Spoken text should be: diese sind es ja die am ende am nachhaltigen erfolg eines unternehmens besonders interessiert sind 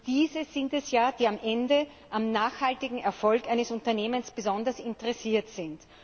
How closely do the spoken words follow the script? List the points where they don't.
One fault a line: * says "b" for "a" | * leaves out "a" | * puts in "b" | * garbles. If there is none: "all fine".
all fine